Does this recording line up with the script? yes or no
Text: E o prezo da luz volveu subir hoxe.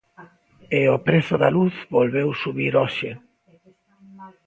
yes